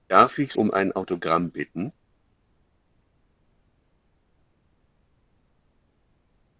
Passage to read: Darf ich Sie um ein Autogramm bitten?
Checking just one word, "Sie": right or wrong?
wrong